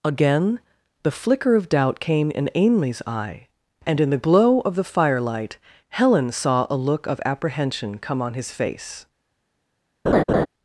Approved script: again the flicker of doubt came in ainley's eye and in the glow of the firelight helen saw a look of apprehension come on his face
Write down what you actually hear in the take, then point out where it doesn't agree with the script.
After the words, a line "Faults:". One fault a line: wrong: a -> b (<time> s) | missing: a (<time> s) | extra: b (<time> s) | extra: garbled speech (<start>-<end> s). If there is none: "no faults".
again the flicker of doubt came in ainley's eye and in the glow of the firelight helen saw a look of apprehension come on his face
Faults:
no faults